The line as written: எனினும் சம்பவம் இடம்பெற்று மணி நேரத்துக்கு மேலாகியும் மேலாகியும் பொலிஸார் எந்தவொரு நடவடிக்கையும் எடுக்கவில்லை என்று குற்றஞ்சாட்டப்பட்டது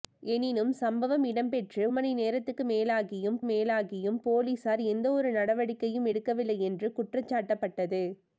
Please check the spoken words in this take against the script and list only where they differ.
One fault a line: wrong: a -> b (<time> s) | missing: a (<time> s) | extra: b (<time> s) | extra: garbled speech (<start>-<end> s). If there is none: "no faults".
no faults